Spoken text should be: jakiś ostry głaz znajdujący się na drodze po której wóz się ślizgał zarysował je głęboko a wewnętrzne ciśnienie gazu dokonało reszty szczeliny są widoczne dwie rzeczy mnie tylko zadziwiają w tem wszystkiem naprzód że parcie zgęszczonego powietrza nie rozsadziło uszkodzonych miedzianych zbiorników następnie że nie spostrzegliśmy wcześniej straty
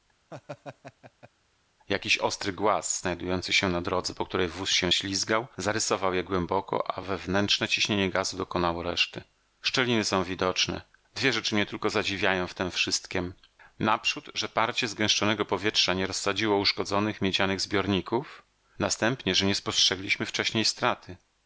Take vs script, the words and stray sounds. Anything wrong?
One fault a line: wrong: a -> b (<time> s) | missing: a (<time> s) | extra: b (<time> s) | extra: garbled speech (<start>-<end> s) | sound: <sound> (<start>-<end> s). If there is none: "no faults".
sound: laugh (0.3-1.3 s)